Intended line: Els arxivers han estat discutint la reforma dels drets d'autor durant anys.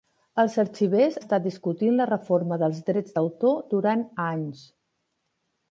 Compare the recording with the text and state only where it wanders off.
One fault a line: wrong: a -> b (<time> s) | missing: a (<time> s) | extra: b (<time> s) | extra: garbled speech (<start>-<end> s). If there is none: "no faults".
missing: han (1.2 s)